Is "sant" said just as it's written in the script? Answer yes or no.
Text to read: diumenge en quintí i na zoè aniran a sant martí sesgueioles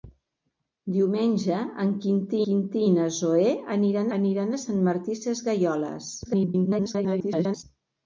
yes